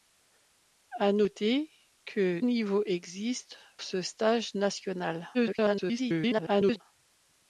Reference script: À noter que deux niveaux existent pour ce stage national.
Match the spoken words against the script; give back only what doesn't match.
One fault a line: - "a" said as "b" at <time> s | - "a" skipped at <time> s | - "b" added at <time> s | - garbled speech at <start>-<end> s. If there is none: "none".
- "deux" skipped at 2.4 s
- "pour" skipped at 3.6 s
- garbled speech at 5.3-6.8 s